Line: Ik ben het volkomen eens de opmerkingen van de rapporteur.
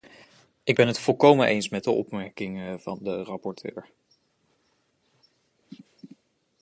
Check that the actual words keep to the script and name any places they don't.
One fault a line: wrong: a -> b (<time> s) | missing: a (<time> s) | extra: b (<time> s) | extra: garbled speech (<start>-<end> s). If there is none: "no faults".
extra: met (1.7 s)